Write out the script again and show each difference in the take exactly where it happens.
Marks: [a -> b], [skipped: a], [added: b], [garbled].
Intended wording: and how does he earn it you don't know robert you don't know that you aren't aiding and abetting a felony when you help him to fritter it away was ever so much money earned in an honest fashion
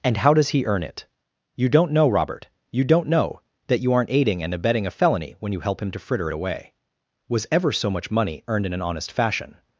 and how does he earn it you don't know robert you don't know that you aren't aiding and abetting a felony when you help him to fritter it away was ever so much money earned in an honest fashion